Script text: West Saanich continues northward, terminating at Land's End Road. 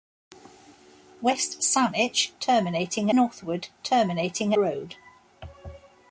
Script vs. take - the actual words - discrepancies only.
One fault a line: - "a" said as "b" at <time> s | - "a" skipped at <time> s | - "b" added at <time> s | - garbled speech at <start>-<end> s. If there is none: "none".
- "continues" said as "terminating" at 2.4 s
- "at Land's End" skipped at 4.5 s